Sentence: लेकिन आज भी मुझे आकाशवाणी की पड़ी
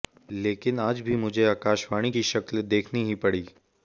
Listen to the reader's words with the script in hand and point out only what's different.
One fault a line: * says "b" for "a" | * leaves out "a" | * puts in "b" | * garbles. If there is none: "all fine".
* puts in "शक्ल देखनी ही"